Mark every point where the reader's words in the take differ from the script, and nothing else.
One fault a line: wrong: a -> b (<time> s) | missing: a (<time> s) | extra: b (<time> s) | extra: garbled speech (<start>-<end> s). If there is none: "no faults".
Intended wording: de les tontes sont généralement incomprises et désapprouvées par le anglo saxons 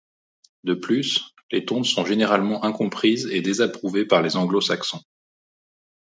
extra: plus (0.7 s)
wrong: le -> les (4.2 s)